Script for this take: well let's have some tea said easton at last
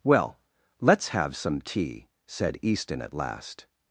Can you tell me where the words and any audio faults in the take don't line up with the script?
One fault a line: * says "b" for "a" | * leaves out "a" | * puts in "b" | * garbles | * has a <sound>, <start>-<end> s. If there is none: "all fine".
all fine